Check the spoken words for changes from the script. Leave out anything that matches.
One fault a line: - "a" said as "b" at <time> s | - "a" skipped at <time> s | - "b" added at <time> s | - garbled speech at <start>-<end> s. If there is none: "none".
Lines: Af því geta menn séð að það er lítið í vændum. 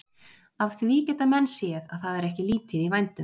- "ekki" added at 2.3 s